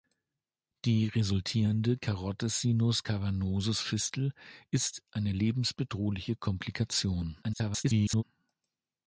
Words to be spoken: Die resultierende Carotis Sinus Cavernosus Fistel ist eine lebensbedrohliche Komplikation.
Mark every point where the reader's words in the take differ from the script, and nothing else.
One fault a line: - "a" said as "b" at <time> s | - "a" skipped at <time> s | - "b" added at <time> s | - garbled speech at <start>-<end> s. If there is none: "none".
- garbled speech at 7.4-8.2 s